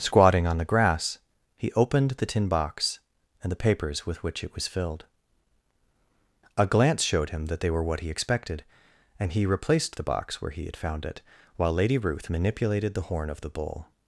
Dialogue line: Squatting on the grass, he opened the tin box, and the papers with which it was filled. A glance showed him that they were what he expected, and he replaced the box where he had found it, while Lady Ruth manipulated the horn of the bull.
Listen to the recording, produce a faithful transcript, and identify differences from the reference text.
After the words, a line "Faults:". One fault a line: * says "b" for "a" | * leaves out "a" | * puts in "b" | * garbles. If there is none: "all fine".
Squatting on the grass, he opened the tin box, and the papers with which it was filled. A glance showed him that they were what he expected, and he replaced the box where he had found it, while Lady Ruth manipulated the horn of the bull.
Faults:
all fine